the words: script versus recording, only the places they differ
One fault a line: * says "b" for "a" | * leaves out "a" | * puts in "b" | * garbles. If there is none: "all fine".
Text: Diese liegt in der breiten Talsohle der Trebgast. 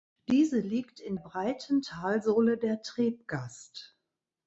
* leaves out "der"